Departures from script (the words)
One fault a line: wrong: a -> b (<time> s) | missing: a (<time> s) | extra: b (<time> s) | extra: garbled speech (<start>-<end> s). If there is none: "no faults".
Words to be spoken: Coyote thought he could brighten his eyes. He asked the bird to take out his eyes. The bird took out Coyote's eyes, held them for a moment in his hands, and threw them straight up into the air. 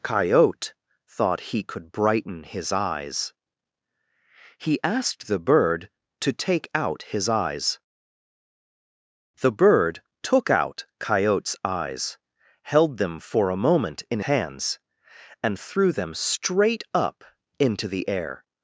missing: his (14.2 s)